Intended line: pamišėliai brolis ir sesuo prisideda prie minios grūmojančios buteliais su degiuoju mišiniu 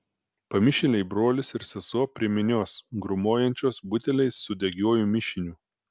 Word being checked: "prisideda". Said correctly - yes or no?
no